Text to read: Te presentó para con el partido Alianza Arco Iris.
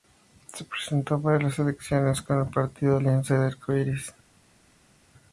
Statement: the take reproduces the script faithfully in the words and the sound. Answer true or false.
false